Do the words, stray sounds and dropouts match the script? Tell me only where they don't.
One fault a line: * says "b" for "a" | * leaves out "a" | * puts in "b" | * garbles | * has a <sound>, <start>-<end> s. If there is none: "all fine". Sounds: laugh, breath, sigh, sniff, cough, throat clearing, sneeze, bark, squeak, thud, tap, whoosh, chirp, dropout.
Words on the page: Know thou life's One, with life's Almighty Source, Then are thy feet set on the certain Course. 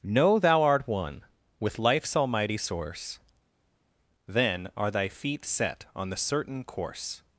* says "art" for "life's"